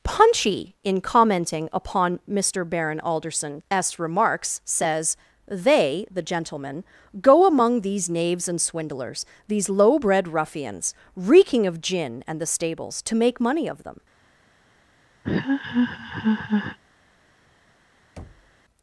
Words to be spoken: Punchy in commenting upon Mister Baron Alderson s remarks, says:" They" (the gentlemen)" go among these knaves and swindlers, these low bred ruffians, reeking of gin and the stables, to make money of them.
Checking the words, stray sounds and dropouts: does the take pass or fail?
fail